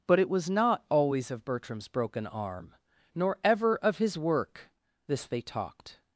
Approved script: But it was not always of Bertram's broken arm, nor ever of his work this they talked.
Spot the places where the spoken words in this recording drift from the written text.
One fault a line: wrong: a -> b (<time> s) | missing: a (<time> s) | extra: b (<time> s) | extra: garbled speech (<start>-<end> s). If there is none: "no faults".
no faults